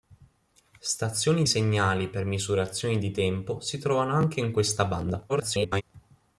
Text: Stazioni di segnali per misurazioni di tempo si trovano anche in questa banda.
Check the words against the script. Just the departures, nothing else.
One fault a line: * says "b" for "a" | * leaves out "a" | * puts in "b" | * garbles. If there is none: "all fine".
* leaves out "di"
* garbles